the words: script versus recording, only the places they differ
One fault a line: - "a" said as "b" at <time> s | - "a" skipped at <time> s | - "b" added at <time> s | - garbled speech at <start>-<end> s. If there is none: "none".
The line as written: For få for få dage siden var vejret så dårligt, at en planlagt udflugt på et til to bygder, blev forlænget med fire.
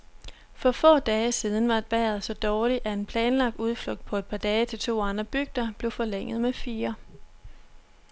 - "for få" skipped at 1.0 s
- "par dage" added at 4.2 s
- "andre" added at 5.0 s